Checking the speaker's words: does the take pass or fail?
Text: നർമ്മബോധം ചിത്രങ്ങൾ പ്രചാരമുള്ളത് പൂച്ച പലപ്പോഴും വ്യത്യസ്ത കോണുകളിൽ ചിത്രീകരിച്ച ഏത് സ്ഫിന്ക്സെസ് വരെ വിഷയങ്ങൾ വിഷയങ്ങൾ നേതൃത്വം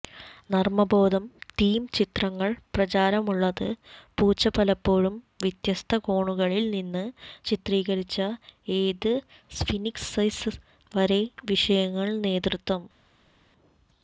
fail